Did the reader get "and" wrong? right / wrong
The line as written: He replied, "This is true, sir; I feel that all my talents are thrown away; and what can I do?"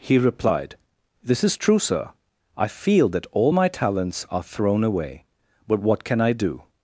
wrong